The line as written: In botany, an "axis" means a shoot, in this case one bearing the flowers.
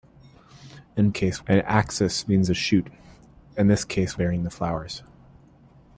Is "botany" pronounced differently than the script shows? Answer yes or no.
yes